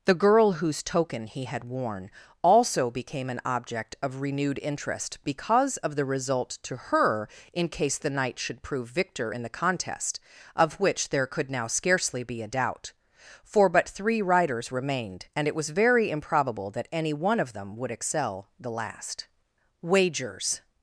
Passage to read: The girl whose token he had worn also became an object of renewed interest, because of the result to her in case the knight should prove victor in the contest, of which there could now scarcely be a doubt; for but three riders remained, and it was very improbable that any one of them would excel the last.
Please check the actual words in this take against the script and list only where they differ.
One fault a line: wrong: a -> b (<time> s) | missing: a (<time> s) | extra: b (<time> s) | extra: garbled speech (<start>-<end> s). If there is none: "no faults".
extra: Wagers (19.8 s)